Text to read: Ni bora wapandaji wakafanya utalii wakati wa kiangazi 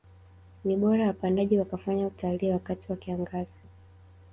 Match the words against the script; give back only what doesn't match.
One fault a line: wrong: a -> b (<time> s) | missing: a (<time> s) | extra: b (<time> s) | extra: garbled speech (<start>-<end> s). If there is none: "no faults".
no faults